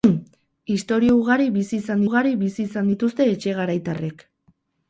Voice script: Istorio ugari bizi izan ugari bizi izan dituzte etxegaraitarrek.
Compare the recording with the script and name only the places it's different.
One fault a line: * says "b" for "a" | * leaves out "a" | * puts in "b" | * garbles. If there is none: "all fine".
all fine